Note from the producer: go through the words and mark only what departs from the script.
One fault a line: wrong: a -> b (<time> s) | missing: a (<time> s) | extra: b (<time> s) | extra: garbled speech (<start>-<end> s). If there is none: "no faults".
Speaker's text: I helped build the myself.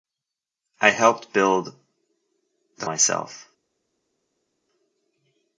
no faults